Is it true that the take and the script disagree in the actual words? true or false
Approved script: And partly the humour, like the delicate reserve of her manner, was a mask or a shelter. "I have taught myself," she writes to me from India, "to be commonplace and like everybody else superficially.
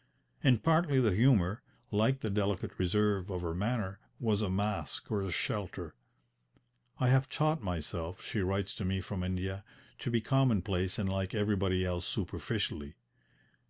false